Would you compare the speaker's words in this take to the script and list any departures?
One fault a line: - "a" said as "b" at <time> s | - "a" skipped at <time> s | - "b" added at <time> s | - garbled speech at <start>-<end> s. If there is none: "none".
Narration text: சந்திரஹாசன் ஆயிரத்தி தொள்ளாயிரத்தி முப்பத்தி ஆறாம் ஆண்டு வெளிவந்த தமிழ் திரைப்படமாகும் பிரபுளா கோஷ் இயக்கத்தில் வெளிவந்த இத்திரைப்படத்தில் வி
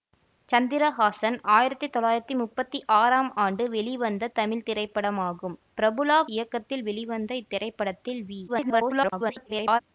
- "கோஷ்" skipped at 6.2 s
- garbled speech at 8.5-9.8 s